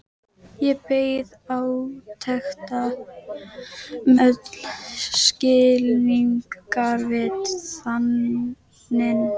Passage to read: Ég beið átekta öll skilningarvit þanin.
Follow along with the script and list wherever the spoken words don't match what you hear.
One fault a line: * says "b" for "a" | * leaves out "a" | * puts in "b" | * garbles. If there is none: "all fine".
all fine